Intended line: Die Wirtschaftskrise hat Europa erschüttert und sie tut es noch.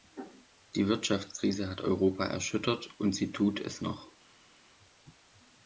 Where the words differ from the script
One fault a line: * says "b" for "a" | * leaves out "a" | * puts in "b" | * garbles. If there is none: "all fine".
all fine